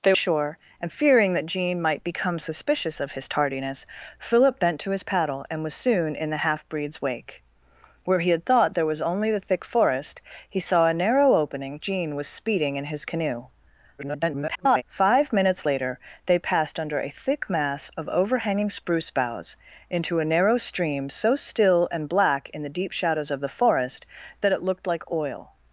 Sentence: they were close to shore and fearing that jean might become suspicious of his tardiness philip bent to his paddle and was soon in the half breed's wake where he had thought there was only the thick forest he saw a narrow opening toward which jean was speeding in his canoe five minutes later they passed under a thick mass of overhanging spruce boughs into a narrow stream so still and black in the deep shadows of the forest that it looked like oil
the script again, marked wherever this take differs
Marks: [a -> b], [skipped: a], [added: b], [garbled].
they [skipped: were close to] shore and fearing that jean might become suspicious of his tardiness philip bent to his paddle and was soon in the half breed's wake where he had thought there was only the thick forest he saw a narrow opening [skipped: toward which] jean was speeding in his canoe [garbled] five minutes later they passed under a thick mass of overhanging spruce boughs into a narrow stream so still and black in the deep shadows of the forest that it looked like oil